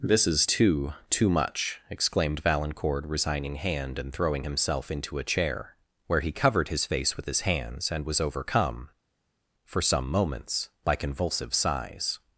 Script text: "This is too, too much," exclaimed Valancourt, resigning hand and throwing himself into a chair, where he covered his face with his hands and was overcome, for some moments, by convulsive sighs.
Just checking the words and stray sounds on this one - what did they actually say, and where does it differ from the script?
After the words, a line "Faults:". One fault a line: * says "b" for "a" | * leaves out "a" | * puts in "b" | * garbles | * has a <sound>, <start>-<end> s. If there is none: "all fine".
"This is too, too much," exclaimed Valancourt, resigning hand and throwing himself into a chair, where he covered his face with his hands and was overcome, for some moments, by convulsive sighs.
Faults:
all fine